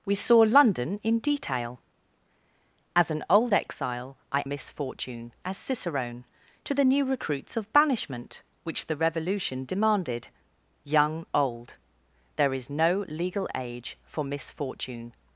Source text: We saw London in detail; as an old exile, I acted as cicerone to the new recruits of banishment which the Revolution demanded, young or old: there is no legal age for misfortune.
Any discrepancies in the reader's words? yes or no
yes